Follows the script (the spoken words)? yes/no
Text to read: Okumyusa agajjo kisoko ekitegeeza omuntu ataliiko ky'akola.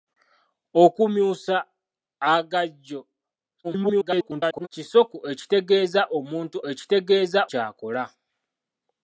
no